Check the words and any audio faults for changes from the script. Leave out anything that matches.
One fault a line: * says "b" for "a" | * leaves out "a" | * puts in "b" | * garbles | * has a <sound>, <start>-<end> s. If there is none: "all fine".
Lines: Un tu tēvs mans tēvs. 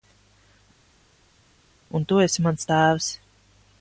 * says "esi" for "tēvs"